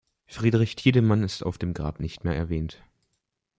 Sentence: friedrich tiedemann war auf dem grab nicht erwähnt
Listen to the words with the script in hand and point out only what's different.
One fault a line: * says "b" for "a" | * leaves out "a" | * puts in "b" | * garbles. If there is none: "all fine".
* says "ist" for "war"
* puts in "mehr"